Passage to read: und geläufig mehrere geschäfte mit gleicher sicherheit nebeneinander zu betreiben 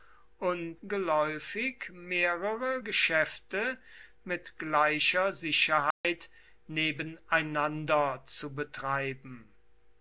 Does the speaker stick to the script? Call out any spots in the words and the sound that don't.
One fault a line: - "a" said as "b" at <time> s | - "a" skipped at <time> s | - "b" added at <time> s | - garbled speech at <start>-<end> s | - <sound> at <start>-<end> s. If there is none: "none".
- dropout at 5.9-6.0 s